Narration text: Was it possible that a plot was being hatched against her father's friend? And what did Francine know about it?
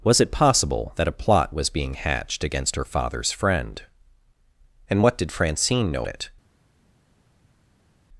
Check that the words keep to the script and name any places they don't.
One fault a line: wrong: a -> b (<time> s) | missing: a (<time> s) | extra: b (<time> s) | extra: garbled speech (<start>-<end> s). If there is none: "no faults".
missing: about (6.1 s)